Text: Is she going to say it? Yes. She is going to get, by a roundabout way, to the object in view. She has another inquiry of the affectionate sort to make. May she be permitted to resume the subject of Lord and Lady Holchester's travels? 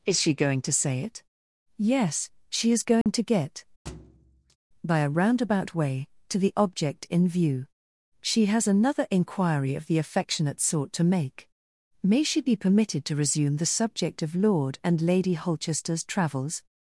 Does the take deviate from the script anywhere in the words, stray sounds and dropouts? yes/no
yes